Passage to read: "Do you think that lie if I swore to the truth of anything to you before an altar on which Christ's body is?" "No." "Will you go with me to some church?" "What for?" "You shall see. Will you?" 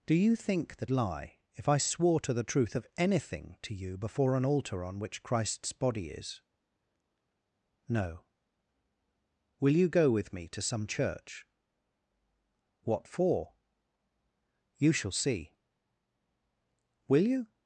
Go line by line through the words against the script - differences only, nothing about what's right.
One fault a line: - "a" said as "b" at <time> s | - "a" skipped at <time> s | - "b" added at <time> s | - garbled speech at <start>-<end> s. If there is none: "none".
none